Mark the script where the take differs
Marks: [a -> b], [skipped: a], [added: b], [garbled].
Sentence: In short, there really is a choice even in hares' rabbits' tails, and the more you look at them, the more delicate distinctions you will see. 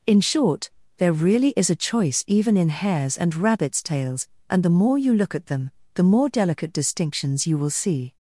In short, there really is a choice even in hares' [added: and] rabbits' tails, and the more you look at them, the more delicate distinctions you will see.